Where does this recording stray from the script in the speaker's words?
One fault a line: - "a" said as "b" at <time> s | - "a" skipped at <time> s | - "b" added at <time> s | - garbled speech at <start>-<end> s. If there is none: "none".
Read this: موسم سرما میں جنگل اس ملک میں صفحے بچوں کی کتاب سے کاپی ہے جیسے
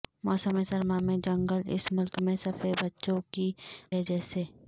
- "کتاب سے کاپی" skipped at 3.5 s